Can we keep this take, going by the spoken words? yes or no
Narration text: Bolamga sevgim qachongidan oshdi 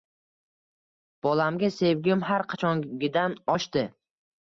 no